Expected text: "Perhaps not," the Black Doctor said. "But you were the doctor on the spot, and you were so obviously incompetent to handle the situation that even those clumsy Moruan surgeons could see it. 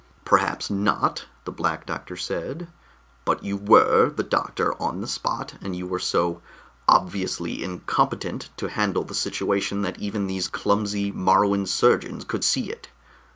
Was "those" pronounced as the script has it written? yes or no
no